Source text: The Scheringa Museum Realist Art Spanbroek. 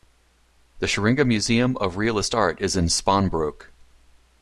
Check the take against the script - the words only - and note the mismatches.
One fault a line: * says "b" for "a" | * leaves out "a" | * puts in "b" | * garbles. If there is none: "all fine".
* puts in "of"
* puts in "is in"